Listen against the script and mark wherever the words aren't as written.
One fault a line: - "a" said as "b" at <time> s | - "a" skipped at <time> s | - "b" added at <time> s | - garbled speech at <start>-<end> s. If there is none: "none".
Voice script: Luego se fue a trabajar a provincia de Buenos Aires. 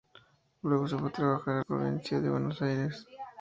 none